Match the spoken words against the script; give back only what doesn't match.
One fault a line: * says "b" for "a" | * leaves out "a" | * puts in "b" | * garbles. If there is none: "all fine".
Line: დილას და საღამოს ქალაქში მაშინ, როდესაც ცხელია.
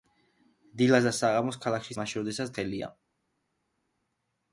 all fine